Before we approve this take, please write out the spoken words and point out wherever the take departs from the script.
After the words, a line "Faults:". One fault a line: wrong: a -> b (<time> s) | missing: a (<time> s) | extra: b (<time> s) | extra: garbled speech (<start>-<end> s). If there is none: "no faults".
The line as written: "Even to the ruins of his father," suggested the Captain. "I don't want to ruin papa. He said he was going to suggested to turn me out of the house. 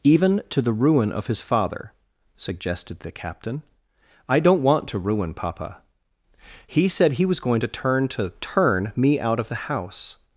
"Even to the ruin of his father," suggested the Captain. "I don't want to ruin papa. He said he was going to turn to turn me out of the house.
Faults:
wrong: ruins -> ruin (0.7 s)
wrong: suggested -> turn (7.7 s)